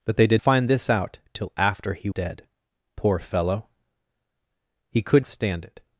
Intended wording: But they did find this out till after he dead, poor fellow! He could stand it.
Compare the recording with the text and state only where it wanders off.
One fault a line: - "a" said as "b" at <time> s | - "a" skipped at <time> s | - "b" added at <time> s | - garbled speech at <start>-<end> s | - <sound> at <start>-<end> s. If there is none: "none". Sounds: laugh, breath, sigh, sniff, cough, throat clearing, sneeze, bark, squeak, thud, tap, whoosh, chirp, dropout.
none